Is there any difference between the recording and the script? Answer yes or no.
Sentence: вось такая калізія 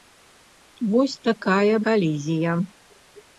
no